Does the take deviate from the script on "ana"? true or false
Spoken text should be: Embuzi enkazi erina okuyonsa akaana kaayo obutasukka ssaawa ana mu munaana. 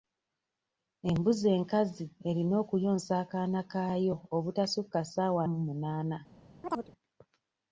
true